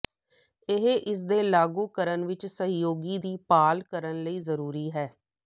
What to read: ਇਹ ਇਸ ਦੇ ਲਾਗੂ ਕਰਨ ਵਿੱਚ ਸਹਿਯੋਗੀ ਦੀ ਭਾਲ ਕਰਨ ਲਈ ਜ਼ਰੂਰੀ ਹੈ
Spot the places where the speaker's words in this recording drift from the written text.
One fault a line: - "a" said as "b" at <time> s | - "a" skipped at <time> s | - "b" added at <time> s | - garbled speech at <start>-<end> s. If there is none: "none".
none